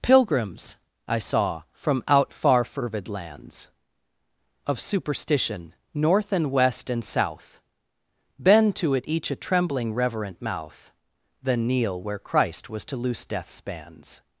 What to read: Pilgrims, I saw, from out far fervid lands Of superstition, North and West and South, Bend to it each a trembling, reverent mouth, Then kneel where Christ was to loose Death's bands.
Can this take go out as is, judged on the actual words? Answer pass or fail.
pass